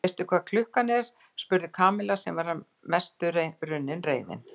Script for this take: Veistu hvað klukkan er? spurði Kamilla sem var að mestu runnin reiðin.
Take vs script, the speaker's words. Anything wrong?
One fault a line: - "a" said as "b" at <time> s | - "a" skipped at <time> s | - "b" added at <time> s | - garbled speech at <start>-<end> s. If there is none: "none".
none